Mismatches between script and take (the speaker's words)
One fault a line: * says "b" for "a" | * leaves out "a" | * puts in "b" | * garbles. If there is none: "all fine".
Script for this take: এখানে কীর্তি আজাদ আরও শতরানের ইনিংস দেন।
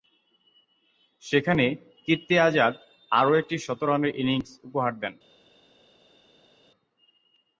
* says "সেখানে" for "এখানে"
* puts in "একটি"
* puts in "উপহার"